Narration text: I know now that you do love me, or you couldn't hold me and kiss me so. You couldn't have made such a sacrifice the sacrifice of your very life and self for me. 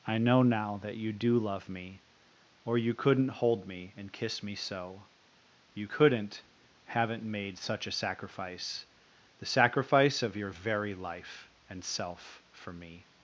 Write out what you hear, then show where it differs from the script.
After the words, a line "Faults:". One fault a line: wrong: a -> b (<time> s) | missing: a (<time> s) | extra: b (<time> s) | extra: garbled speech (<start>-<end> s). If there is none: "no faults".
I know now that you do love me, or you couldn't hold me and kiss me so. You couldn't haven't made such a sacrifice the sacrifice of your very life and self for me.
Faults:
wrong: have -> haven't (6.9 s)